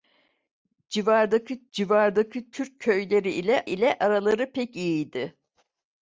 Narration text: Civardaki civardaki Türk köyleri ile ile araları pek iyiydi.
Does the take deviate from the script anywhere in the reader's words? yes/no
no